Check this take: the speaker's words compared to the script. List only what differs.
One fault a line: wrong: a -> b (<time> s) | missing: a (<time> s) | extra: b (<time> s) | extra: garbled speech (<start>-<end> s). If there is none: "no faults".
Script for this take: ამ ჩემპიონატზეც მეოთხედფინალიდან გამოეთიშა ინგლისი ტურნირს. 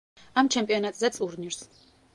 missing: მეოთხედფინალიდან გამოეთიშა ინგლისი (1.2 s)